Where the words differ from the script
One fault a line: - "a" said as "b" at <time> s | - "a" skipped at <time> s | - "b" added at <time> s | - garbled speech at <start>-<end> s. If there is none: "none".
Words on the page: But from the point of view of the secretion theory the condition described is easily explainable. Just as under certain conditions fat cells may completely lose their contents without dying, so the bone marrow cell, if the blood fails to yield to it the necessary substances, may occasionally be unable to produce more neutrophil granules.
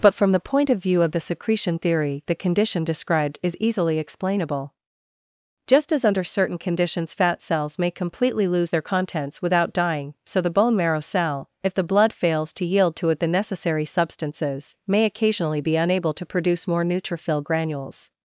none